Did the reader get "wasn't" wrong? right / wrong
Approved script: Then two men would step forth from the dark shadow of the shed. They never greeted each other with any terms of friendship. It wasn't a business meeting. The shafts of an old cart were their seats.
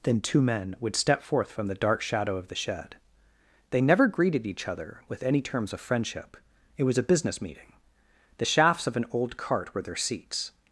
wrong